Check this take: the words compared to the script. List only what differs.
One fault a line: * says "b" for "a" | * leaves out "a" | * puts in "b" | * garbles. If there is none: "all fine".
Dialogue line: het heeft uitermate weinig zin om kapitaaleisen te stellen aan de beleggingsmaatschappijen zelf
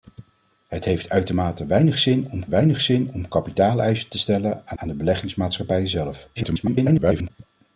* puts in "weinig zin om"
* puts in "aan"
* garbles